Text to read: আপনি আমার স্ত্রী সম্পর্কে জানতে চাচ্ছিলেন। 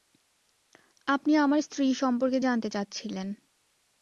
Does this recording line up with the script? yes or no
yes